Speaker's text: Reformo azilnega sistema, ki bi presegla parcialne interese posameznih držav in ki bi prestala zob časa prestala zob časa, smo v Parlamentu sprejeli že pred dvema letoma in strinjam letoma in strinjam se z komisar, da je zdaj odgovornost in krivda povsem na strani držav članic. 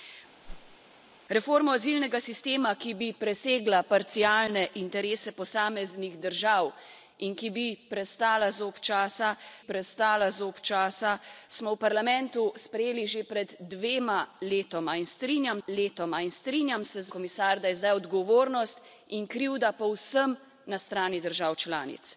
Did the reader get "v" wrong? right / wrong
right